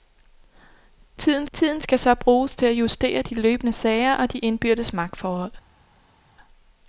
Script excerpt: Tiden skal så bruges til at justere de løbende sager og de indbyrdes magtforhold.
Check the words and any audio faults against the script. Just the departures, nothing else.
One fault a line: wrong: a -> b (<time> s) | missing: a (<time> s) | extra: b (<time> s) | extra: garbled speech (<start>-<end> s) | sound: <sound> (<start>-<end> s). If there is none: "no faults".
extra: tiden (1.5 s)